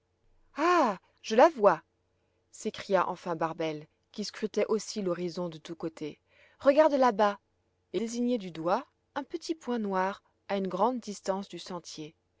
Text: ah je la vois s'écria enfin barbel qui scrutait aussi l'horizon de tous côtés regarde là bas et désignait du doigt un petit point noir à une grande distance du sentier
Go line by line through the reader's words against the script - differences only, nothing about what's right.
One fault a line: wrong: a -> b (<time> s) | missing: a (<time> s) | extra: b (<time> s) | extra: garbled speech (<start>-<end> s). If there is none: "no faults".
no faults